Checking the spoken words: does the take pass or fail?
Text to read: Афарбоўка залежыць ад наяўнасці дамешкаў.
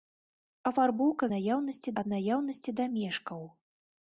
fail